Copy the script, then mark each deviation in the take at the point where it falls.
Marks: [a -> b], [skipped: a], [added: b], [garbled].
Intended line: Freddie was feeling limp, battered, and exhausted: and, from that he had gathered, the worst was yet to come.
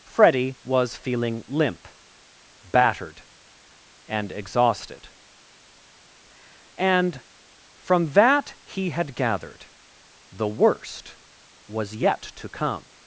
Freddie was feeling limp, battered, and exhausted: and, from that he had gathered, the worst was yet to come.